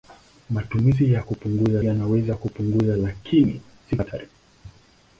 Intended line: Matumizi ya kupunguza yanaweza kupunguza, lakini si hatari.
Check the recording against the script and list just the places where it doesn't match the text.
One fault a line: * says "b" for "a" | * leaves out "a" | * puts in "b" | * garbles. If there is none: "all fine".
all fine